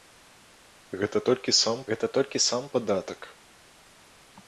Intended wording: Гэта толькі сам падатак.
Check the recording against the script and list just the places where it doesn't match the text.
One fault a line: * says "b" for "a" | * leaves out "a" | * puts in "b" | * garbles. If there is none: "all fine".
* puts in "гэта толькі сам"